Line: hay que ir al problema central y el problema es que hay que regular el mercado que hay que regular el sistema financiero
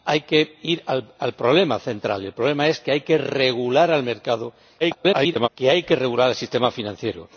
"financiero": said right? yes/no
yes